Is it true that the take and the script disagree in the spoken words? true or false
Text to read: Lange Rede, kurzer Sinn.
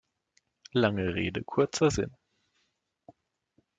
false